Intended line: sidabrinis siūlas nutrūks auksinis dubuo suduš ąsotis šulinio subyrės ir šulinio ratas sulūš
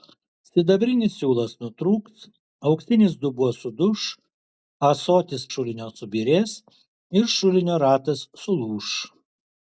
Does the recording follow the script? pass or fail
pass